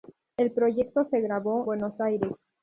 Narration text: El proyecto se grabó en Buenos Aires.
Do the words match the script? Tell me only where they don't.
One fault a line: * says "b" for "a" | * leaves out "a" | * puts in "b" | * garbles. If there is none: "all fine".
* leaves out "en"